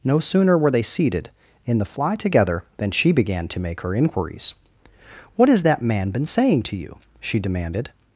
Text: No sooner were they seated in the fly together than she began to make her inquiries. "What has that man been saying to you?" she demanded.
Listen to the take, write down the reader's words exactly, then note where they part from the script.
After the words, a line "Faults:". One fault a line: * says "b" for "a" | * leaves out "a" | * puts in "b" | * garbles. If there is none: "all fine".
No sooner were they seated in the fly together than she began to make her inquiries. "What has that man been saying to you?" she demanded.
Faults:
all fine